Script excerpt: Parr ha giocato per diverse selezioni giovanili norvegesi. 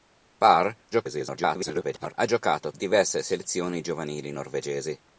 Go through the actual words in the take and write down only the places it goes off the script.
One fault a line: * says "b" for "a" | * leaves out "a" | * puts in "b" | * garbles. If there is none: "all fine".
* garbles
* leaves out "per"